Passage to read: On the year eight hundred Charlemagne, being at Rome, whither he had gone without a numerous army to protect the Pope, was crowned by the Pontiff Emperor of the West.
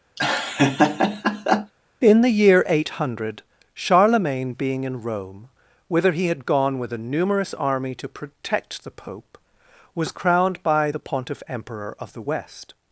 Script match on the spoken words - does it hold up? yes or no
no